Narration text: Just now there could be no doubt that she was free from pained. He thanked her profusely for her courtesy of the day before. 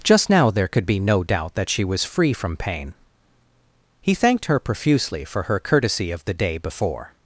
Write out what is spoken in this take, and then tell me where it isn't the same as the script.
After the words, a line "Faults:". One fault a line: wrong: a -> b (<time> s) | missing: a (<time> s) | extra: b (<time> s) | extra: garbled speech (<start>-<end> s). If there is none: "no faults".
Just now there could be no doubt that she was free from pain. He thanked her profusely for her courtesy of the day before.
Faults:
wrong: pained -> pain (2.6 s)